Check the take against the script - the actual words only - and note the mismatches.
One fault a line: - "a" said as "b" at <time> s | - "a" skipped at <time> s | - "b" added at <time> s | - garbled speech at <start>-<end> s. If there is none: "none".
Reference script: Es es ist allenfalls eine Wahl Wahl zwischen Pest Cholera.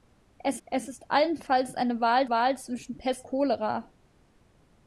none